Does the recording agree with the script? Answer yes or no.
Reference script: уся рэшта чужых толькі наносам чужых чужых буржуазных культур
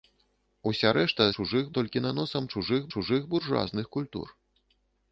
yes